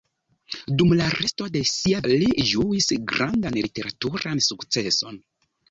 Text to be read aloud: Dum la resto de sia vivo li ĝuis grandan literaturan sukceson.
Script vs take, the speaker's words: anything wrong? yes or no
yes